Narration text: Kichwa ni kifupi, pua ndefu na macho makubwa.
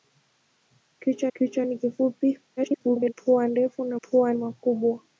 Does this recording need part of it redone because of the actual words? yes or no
yes